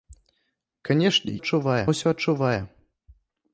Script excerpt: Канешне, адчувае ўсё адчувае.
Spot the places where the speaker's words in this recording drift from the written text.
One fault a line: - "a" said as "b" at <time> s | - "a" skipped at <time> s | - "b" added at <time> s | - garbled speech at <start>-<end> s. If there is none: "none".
none